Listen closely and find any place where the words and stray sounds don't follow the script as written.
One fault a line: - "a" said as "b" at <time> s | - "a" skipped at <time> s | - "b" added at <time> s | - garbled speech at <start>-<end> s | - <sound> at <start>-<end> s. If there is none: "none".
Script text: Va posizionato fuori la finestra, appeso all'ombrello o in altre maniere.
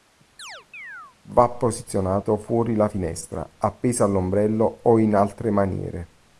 - chirp at 0.4-1.2 s